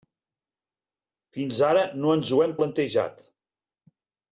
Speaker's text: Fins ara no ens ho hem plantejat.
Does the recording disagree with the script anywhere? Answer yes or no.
no